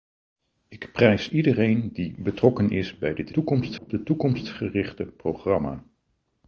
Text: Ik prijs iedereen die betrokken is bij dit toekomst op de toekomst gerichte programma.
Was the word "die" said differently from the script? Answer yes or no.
no